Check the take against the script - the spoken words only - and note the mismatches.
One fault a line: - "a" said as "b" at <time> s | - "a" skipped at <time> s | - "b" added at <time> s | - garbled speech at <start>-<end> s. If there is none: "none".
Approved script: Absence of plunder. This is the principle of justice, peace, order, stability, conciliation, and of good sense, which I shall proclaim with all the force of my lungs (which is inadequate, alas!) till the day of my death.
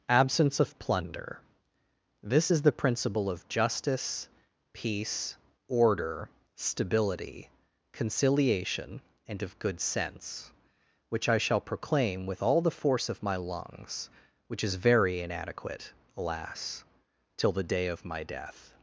- "very" added at 14.8 s